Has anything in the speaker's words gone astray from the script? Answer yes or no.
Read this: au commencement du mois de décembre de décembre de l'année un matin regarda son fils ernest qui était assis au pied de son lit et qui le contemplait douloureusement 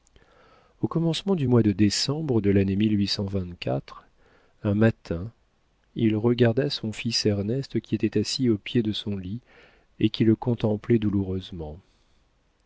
yes